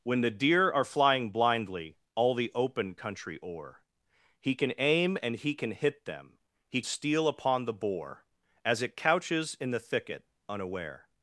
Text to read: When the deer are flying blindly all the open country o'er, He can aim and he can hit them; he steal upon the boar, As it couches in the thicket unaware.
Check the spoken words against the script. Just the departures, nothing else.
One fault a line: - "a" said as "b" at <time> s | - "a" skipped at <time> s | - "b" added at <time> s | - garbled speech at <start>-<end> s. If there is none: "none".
none